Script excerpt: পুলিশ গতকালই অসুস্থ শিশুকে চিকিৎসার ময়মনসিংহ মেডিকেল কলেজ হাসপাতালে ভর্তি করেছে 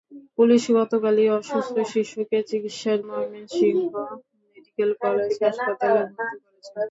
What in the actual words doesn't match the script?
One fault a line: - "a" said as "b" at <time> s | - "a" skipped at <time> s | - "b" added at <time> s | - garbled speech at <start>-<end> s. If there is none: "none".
none